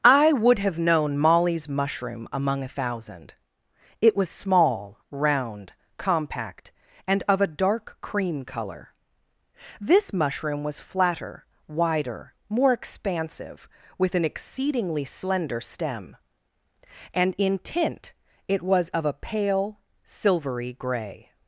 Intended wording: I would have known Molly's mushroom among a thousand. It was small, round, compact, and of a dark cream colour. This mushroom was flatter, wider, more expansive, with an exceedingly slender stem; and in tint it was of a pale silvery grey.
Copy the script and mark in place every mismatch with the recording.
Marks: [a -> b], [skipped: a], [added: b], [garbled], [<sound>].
I would have known Molly's mushroom among a thousand. It was small, round, compact, and of a dark cream colour. This mushroom was flatter, wider, more expansive, with an exceedingly slender stem; and in tint it was of a pale silvery grey.